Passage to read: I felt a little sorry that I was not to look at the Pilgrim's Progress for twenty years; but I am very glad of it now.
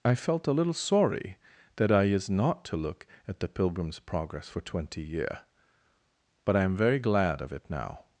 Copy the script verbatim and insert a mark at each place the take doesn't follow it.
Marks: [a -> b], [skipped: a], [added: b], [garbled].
I felt a little sorry that I [was -> is] not to look at the Pilgrim's Progress for twenty [years; -> year] but I am very glad of it now.